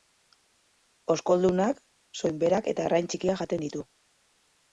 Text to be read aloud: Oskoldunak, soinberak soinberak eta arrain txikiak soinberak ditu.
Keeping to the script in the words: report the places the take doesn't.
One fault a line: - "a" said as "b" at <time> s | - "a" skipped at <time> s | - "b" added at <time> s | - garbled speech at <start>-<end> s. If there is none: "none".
- "soinberak" skipped at 2.7 s
- "soinberak" said as "jaten" at 3.4 s